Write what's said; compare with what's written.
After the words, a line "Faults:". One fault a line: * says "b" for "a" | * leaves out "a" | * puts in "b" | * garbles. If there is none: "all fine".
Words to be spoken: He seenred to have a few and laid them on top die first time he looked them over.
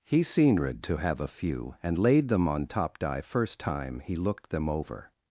He seenred to have a few and laid them on top die first time he looked them over.
Faults:
all fine